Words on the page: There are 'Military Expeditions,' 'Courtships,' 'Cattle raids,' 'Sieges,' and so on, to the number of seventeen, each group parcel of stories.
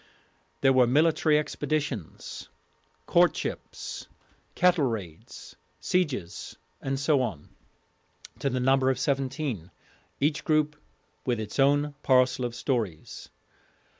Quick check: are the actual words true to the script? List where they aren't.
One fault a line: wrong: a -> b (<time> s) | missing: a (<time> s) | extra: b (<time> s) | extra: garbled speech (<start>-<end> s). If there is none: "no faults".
wrong: are -> were (0.7 s)
extra: with its own (11.3 s)